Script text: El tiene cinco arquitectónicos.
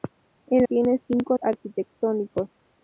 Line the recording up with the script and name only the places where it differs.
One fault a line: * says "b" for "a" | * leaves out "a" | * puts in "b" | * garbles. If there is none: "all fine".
all fine